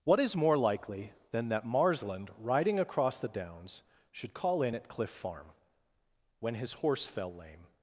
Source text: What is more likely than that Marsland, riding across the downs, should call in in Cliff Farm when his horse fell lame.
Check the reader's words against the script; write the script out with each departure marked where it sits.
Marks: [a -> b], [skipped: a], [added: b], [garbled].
What is more likely than that Marsland, riding across the downs, should call in [in -> at] Cliff Farm when his horse fell lame.